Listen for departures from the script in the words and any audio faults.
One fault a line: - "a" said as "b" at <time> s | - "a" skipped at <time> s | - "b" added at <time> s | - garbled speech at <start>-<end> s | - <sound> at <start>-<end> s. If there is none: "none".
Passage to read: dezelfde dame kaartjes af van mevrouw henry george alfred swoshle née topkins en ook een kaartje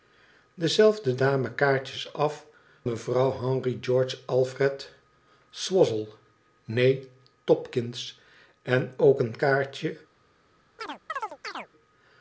- "van" skipped at 2.5 s
- chirp at 10.8-11.7 s